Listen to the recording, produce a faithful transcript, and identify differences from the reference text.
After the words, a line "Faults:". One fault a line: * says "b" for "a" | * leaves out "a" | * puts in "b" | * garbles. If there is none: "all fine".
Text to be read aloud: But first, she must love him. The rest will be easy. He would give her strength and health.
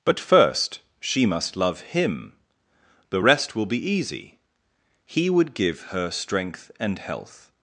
But first, she must love him. The rest will be easy. He would give her strength and health.
Faults:
all fine